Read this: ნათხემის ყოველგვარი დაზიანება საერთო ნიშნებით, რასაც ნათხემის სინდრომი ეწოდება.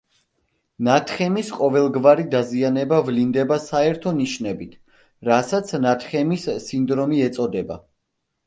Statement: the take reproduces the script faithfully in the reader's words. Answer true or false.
false